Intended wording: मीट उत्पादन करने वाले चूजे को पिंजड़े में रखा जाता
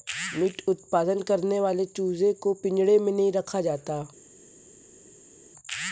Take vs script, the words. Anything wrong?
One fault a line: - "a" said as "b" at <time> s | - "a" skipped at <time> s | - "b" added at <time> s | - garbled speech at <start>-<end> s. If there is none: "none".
- "नहीं" added at 3.1 s